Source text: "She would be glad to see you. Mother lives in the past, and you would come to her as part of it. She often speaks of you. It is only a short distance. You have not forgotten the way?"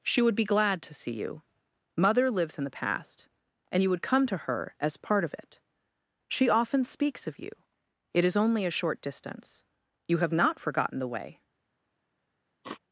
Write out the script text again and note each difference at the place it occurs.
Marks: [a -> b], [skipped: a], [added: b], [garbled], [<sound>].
"She would be glad to see you. Mother lives in the past, and you would come to her as part of it. She often speaks of you. It is only a short distance. You have not forgotten the way?" [sniff]